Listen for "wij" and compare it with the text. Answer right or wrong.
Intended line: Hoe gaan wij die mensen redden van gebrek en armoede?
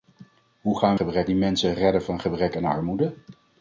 wrong